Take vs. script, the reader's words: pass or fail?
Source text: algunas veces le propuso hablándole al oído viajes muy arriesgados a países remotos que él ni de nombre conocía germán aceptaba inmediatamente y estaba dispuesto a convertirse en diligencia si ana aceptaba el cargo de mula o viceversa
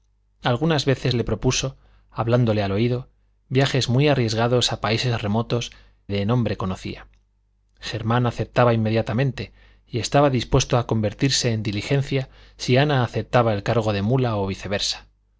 fail